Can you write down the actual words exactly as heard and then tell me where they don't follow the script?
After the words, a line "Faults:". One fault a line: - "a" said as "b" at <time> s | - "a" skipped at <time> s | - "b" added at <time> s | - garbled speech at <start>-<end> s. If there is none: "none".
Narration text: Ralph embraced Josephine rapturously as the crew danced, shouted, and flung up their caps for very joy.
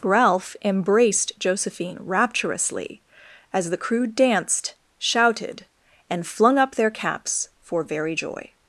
Ralph embraced Josephine rapturously as the crew danced, shouted, and flung up their caps for very joy.
Faults:
none